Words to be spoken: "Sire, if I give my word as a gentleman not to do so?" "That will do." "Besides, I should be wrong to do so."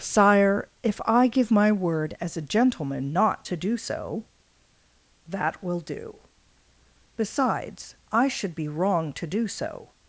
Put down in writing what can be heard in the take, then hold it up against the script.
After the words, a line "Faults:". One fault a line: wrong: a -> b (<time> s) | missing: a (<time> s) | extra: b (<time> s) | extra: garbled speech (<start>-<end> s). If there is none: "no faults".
"Sire, if I give my word as a gentleman not to do so?" "That will do." "Besides, I should be wrong to do so."
Faults:
no faults